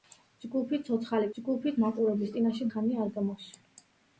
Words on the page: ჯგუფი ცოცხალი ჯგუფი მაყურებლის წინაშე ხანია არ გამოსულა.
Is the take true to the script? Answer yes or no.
yes